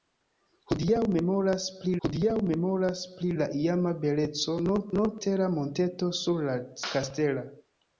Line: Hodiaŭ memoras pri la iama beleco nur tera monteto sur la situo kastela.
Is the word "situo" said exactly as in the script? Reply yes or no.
no